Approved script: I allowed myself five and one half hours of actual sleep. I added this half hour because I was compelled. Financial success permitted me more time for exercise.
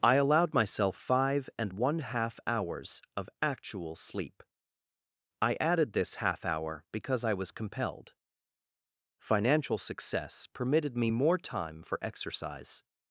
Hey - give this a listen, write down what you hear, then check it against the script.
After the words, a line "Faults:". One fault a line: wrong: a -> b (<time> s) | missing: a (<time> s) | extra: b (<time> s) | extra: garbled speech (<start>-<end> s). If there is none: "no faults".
I allowed myself five and one half hours of actual sleep. I added this half hour because I was compelled. Financial success permitted me more time for exercise.
Faults:
no faults